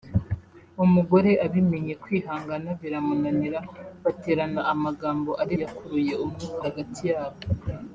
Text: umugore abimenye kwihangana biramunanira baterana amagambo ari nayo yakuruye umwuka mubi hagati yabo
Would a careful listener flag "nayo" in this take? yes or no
yes